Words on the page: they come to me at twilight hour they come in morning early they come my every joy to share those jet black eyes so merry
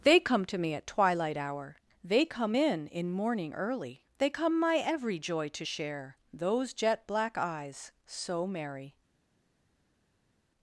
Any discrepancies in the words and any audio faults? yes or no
yes